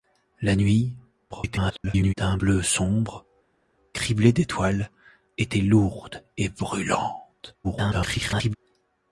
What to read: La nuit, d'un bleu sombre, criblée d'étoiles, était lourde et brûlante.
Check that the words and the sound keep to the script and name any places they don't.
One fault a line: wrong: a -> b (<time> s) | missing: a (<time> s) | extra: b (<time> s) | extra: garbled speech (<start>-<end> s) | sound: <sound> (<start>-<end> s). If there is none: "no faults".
extra: garbled speech (1.3-2.1 s)
extra: garbled speech (7.6-8.6 s)